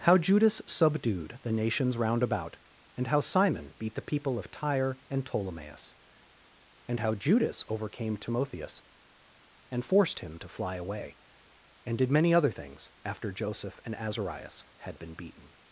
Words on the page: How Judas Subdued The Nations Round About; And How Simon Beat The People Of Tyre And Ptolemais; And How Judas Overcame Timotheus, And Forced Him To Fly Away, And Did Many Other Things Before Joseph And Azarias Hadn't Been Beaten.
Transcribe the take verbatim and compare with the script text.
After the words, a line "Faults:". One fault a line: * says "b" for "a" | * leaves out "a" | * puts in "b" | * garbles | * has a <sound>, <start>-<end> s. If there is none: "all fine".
How Judas Subdued The Nations Round About; And How Simon Beat The People Of Tyre And Ptolemais; And How Judas Overcame Timotheus, And Forced Him To Fly Away, And Did Many Other Things After Joseph And Azarias Had Been Beaten.
Faults:
* says "After" for "Before"
* says "Had" for "Hadn't"